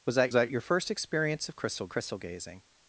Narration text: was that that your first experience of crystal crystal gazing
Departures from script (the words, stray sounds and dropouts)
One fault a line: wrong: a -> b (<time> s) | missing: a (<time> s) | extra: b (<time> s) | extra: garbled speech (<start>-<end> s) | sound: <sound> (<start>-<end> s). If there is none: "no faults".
no faults